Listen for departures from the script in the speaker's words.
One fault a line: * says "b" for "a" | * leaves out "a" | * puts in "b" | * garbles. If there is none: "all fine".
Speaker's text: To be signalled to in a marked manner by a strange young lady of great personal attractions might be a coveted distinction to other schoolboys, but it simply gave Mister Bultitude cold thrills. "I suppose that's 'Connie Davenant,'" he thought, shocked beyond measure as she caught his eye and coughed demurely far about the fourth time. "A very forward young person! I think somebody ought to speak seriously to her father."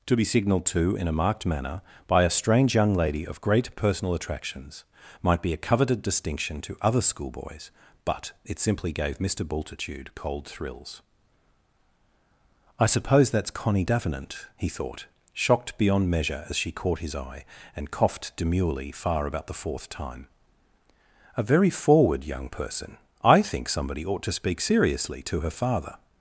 all fine